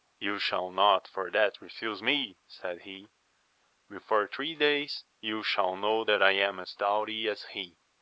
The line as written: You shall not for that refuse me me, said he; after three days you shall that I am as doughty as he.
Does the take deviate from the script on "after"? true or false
true